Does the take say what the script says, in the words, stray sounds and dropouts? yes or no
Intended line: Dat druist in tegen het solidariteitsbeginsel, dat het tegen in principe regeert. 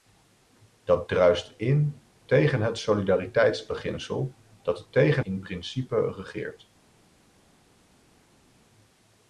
yes